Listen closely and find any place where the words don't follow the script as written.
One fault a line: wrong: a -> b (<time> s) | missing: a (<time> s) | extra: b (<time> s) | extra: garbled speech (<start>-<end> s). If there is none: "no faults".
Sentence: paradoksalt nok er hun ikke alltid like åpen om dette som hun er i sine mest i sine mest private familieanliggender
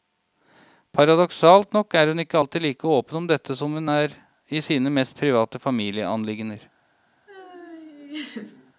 missing: i sine mest (5.2 s)